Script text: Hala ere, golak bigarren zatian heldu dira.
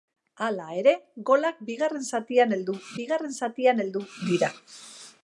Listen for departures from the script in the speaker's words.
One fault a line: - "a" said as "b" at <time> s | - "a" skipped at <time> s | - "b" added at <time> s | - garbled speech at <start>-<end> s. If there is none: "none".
- "bigarren zatian heldu" added at 3.0 s